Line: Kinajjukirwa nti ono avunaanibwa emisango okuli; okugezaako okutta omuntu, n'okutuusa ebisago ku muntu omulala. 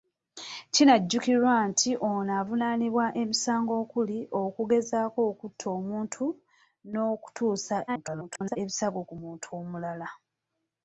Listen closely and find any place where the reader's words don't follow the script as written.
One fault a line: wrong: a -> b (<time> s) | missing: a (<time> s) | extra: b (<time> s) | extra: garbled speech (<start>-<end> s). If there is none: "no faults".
extra: garbled speech (7.9-8.6 s)